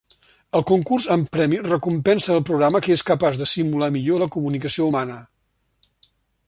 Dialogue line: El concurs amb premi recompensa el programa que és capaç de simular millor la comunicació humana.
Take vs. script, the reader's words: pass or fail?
pass